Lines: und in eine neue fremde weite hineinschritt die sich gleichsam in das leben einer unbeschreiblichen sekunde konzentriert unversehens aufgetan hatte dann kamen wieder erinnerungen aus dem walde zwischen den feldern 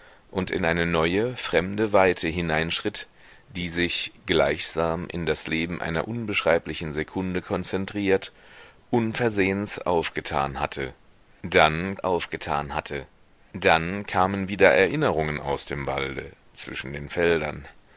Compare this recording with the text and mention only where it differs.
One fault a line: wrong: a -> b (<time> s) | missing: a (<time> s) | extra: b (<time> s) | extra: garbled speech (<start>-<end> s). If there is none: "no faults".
extra: aufgetan hatte dann (12.0 s)